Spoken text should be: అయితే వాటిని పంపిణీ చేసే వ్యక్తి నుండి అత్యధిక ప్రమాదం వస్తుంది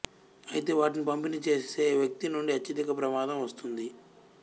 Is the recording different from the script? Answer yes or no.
no